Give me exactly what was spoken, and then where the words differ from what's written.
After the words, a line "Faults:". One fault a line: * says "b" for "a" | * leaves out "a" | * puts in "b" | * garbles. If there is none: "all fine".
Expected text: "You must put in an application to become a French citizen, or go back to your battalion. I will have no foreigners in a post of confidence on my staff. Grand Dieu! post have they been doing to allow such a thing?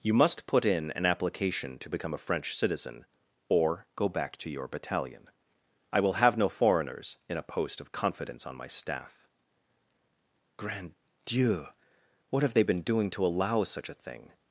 "You must put in an application to become a French citizen, or go back to your battalion. I will have no foreigners in a post of confidence on my staff. Grand Dieu! what have they been doing to allow such a thing?
Faults:
* says "what" for "post"